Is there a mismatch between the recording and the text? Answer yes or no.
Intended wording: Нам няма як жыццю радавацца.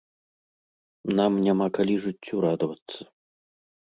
yes